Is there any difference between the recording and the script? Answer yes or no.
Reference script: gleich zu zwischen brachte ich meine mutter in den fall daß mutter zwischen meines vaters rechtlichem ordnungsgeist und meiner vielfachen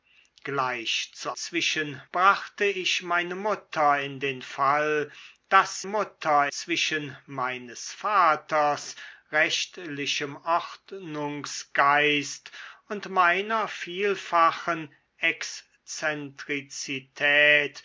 no